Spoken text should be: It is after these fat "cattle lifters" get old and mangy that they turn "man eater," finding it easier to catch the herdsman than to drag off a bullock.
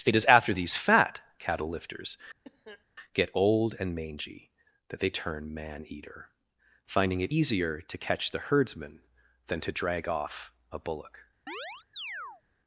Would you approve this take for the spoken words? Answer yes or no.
yes